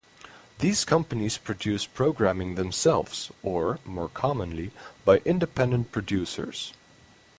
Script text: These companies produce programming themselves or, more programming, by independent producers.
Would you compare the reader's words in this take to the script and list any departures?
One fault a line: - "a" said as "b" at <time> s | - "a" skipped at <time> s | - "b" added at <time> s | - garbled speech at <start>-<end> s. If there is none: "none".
- "programming" said as "commonly" at 4.1 s